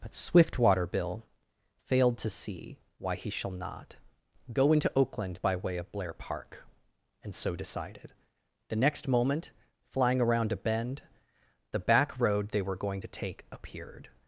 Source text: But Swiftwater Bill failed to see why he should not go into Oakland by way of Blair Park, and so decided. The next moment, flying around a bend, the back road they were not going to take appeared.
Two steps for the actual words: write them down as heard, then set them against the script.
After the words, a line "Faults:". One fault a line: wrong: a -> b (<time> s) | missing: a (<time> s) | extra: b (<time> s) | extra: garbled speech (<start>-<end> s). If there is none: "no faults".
But Swiftwater Bill failed to see why he shall not go into Oakland by way of Blair Park, and so decided. The next moment, flying around a bend, the back road they were going to take appeared.
Faults:
wrong: should -> shall (3.3 s)
missing: not (12.8 s)